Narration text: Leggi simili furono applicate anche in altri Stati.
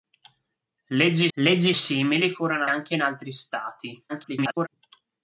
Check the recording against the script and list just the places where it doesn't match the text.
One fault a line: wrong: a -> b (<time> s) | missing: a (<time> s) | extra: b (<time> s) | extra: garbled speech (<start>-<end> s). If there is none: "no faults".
extra: leggi (1.3 s)
missing: applicate (2.7 s)
extra: garbled speech (4.1-4.7 s)